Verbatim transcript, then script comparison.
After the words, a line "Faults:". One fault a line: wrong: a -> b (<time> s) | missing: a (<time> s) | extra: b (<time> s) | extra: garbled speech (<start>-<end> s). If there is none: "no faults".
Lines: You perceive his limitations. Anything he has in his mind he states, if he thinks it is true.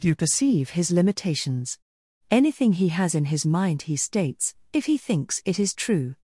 You perceive his limitations. Anything he has in his mind he states, if he thinks it is true.
Faults:
no faults